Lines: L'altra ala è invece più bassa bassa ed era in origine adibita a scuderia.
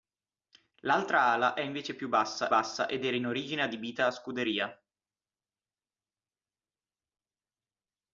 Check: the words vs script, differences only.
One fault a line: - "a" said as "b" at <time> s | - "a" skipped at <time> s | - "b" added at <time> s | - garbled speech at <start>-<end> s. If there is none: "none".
none